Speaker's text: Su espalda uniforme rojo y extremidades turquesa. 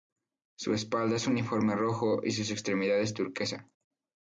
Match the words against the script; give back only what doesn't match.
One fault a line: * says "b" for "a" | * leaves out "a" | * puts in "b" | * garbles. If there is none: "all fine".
* puts in "es"
* puts in "sus"